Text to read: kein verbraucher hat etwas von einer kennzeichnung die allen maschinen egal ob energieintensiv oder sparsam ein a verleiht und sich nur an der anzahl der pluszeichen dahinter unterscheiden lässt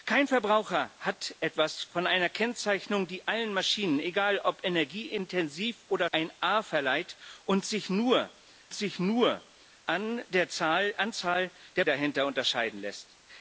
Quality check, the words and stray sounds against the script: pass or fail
fail